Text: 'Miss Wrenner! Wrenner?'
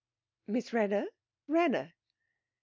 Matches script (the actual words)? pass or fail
pass